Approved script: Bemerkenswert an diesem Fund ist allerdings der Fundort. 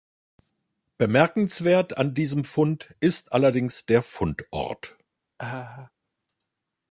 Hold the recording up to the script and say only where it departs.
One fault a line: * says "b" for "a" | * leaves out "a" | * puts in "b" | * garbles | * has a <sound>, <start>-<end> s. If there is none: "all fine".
* has a laugh, 5.4-5.9 s